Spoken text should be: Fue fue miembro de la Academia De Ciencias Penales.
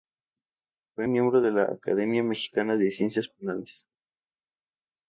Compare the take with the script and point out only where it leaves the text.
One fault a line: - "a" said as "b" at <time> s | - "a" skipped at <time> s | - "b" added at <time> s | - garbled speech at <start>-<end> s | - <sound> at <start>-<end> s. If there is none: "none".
- "fue" skipped at 1.1 s
- "Mexicana" added at 2.2 s